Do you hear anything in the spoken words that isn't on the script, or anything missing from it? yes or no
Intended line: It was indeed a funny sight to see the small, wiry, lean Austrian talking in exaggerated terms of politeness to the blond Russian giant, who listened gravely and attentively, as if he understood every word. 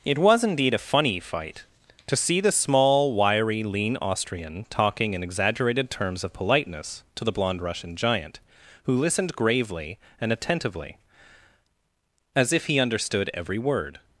yes